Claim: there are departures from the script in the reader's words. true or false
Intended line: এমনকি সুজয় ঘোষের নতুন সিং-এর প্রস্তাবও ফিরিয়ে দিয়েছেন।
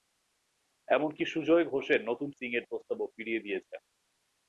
false